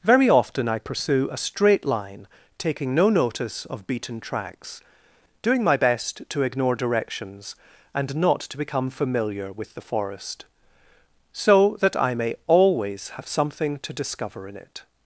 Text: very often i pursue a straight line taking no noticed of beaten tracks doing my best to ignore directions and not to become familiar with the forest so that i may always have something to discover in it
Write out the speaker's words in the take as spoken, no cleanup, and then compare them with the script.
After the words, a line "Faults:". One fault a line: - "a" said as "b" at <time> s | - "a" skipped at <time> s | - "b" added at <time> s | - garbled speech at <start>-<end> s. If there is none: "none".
very often i pursue a straight line taking no notice of beaten tracks doing my best to ignore directions and not to become familiar with the forest so that i may always have something to discover in it
Faults:
- "noticed" said as "notice" at 3.1 s